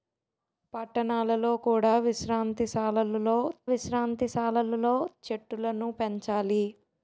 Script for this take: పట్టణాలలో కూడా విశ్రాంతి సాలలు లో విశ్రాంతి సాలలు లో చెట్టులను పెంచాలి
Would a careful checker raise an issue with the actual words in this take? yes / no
no